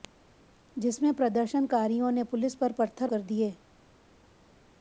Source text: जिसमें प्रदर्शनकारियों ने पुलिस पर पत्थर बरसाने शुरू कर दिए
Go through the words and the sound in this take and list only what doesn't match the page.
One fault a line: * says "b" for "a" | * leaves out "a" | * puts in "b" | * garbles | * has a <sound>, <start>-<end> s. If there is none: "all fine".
* leaves out "बरसाने शुरू"